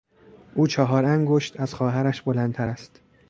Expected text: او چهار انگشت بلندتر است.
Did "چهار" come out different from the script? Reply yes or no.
no